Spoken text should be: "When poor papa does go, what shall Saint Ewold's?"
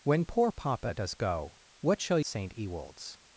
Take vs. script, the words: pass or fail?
pass